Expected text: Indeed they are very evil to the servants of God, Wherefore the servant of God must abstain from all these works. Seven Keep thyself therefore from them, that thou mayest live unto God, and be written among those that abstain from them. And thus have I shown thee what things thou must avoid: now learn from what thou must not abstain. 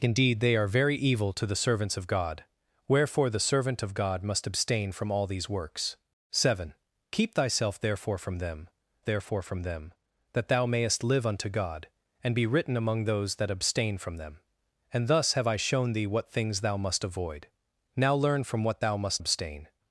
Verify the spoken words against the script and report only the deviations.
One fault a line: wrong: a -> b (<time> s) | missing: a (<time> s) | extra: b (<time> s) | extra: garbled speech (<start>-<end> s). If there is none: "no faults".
extra: therefore from them (9.0 s)
missing: not (19.2 s)